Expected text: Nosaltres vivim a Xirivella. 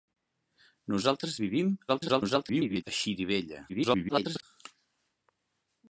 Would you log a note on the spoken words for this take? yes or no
yes